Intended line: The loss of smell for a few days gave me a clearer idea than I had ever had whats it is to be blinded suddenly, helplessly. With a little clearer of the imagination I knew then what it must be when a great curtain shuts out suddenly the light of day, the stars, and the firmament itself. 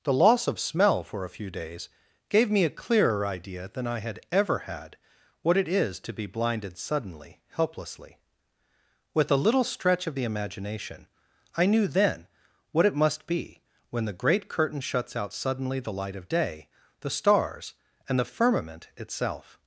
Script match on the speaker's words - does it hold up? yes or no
no